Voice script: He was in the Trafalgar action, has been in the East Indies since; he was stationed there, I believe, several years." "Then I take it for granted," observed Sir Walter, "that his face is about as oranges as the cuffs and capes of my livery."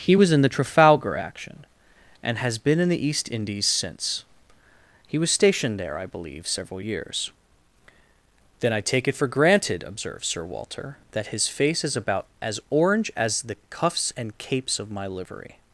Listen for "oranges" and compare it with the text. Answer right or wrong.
wrong